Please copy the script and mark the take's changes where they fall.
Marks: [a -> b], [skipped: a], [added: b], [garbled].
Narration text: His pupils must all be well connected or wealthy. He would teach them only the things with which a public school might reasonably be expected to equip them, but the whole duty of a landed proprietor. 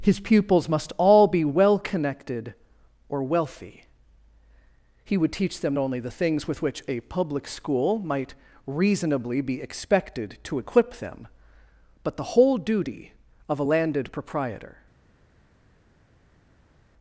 His pupils must all be well connected or wealthy. He would teach them only the things with which a public school might reasonably be expected to equip them, but the whole duty of a landed proprietor.